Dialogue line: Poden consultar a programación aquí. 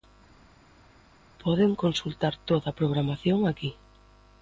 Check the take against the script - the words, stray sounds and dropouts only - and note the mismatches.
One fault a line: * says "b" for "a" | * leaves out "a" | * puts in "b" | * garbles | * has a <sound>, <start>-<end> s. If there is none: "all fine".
* puts in "toda"